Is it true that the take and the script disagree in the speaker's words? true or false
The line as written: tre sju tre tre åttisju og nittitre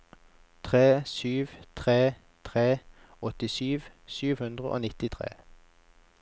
true